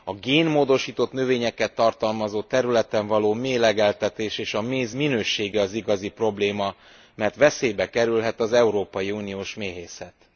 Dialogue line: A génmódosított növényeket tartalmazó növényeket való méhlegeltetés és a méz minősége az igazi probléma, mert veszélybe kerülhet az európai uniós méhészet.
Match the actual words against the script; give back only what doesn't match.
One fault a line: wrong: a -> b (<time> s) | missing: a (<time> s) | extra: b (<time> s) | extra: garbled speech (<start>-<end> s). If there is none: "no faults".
wrong: növényeket -> területen (2.4 s)